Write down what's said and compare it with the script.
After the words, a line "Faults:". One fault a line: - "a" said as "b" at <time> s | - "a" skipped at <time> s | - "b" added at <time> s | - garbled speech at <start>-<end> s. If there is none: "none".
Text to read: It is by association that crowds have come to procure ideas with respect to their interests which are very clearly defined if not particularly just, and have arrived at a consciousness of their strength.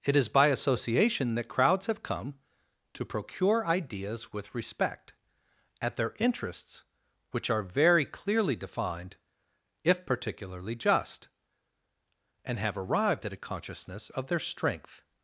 It is by association that crowds have come to procure ideas with respect at their interests which are very clearly defined if particularly just, and have arrived at a consciousness of their strength.
Faults:
- "to" said as "at" at 5.8 s
- "not" skipped at 10.1 s